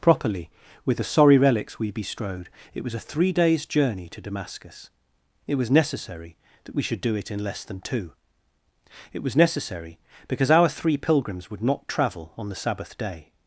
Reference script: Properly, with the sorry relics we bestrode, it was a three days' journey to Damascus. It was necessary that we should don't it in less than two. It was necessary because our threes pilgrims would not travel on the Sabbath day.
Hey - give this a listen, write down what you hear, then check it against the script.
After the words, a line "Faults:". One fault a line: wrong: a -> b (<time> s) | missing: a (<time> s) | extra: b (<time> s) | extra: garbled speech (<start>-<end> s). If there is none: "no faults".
Properly, with the sorry relics we bestrode, it was a three days' journey to Damascus. It was necessary that we should do it in less than two. It was necessary because our three pilgrims would not travel on the Sabbath day.
Faults:
wrong: don't -> do (7.0 s)
wrong: threes -> three (10.7 s)